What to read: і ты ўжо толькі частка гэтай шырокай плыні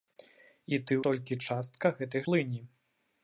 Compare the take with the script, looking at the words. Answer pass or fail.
fail